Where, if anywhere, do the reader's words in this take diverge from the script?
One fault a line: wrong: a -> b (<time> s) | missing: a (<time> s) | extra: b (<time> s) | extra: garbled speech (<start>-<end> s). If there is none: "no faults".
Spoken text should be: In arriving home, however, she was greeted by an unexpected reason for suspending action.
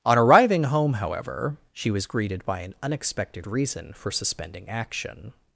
wrong: In -> On (0.0 s)